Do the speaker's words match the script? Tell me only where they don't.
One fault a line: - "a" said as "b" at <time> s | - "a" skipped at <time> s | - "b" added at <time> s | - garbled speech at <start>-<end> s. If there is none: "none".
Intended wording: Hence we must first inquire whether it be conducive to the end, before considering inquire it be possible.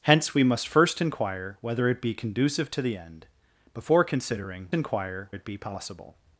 none